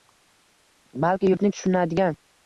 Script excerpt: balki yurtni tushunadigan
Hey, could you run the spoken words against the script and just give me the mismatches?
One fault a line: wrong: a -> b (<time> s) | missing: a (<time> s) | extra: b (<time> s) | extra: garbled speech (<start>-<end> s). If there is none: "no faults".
no faults